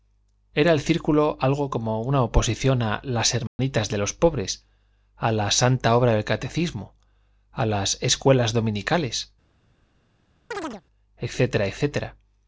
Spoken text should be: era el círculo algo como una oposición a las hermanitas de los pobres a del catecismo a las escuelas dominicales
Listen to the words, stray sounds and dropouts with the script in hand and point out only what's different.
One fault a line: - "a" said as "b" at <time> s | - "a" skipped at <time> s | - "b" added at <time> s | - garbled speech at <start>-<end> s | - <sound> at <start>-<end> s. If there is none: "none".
- dropout at 3.5-3.6 s
- "la santa obra" added at 5.3 s
- chirp at 10.5-10.8 s